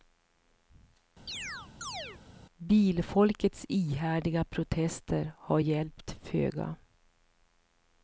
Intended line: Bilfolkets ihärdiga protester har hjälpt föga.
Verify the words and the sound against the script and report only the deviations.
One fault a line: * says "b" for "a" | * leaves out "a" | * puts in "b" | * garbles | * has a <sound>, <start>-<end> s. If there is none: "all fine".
* has a chirp, 1.3-2.2 s